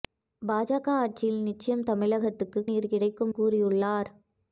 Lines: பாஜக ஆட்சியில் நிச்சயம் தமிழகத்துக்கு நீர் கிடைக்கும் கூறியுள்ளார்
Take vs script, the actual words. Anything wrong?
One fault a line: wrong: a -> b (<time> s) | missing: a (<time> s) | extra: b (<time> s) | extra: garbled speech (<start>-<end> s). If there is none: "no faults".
no faults